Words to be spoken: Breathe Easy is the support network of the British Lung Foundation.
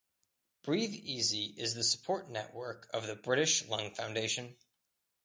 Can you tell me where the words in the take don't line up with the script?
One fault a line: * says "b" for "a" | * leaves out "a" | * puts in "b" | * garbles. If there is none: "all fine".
all fine